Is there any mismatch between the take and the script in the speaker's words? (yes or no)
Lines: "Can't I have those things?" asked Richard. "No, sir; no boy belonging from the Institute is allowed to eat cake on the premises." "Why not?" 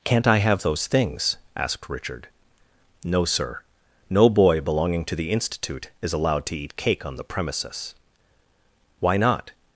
yes